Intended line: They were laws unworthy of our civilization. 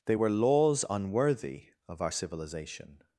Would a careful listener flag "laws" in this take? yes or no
no